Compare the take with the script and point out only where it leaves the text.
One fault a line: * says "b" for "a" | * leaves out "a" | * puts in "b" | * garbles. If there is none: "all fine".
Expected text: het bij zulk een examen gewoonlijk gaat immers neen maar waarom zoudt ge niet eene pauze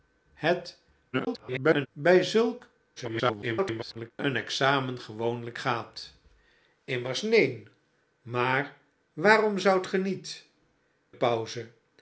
* garbles
* garbles
* leaves out "eene"